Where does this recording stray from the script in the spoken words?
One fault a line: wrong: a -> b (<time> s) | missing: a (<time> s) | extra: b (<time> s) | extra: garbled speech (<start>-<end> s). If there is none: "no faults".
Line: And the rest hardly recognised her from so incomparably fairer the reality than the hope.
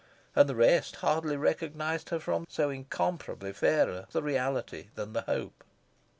no faults